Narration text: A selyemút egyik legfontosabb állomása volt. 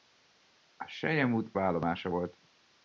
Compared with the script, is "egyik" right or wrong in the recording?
wrong